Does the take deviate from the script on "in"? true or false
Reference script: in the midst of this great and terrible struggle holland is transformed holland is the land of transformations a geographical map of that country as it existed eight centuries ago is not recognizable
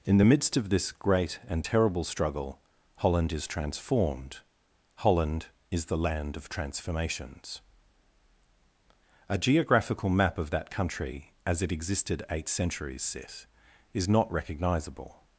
false